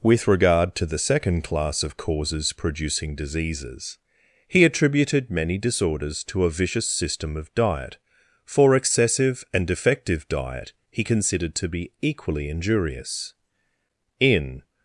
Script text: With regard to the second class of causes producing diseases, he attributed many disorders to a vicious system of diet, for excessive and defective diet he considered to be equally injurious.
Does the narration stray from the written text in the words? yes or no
yes